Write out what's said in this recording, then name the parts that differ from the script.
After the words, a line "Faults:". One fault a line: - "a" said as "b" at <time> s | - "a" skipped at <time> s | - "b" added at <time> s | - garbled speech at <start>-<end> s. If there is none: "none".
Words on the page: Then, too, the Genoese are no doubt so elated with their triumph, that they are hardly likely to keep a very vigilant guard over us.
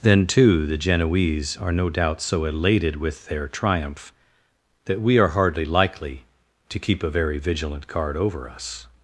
Then, too, the Genoese are no doubt so elated with their triumph, that we are hardly likely to keep a very vigilant guard over us.
Faults:
- "they" said as "we" at 5.0 s